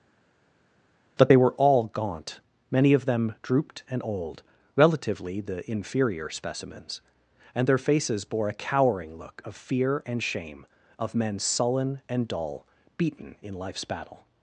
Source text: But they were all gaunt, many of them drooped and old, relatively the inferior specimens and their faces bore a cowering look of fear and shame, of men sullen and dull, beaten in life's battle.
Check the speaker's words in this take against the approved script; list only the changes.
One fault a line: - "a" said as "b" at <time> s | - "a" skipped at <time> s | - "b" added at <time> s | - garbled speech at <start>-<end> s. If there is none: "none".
none